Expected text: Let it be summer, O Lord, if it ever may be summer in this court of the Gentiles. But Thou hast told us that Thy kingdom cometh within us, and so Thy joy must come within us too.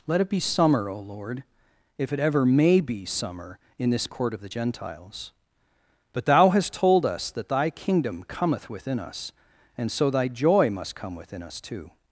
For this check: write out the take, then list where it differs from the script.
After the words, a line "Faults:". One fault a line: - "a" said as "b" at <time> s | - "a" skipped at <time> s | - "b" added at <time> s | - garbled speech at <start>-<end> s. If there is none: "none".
Let it be summer, O Lord, if it ever may be summer in this court of the Gentiles. But Thou hast told us that Thy kingdom cometh within us, and so Thy joy must come within us too.
Faults:
none